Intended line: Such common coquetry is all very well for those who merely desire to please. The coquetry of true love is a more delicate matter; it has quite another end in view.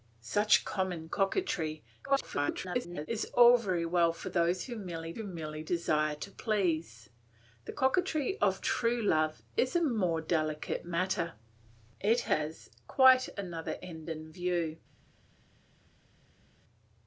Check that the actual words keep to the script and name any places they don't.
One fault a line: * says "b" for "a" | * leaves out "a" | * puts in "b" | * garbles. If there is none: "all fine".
* garbles
* puts in "who merely"